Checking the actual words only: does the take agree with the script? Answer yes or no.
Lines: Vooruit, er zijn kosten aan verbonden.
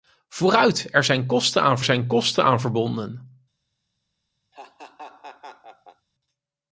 no